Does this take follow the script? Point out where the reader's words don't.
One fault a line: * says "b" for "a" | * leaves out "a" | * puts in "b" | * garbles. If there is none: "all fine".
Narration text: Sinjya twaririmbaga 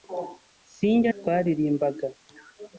all fine